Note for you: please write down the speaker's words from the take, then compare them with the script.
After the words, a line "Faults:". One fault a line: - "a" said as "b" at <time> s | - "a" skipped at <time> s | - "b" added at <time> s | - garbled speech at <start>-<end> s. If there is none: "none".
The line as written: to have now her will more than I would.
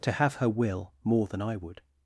to have her will more than I would.
Faults:
- "now" skipped at 0.4 s